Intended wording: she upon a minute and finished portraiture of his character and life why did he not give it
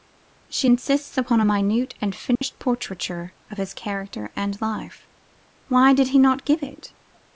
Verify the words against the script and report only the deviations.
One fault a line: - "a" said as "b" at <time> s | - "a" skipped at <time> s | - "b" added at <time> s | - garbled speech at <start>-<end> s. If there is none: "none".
- "insists" added at 0.6 s